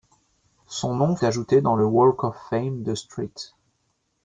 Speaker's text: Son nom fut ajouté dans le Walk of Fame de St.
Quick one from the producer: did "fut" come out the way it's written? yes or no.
no